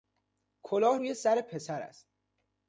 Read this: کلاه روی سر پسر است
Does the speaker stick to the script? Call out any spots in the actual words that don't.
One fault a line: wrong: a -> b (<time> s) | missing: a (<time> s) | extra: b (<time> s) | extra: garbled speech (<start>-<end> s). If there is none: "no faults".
no faults